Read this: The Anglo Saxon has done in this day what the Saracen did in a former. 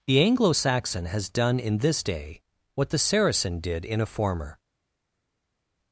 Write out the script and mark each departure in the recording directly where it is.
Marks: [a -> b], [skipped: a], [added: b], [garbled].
The Anglo Saxon has done in this day what the Saracen did in a former.